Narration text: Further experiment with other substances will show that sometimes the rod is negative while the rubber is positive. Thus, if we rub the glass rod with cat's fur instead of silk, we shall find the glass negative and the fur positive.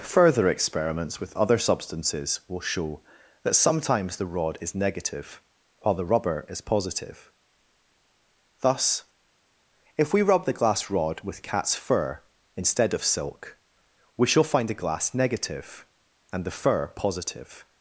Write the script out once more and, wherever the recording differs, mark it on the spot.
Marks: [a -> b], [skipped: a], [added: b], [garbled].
Further [experiment -> experiments] with other substances will show that sometimes the rod is negative while the rubber is positive. Thus, if we rub the glass rod with cat's fur instead of silk, we shall find the glass negative and the fur positive.